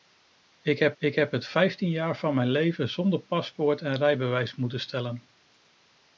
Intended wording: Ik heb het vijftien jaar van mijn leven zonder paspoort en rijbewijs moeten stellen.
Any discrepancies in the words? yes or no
yes